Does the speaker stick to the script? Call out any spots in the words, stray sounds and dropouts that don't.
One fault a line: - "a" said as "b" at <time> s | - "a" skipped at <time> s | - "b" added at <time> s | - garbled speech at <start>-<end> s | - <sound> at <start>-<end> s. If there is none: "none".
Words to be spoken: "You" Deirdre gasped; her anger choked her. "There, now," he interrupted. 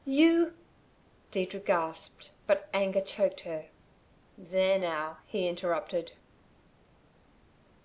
- "her" said as "but" at 2.5 s